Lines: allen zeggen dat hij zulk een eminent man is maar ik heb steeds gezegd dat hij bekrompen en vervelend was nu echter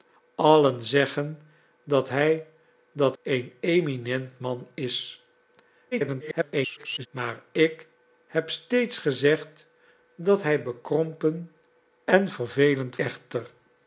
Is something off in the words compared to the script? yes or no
yes